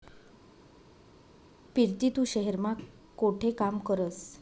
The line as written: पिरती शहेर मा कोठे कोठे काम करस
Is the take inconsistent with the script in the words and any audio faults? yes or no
yes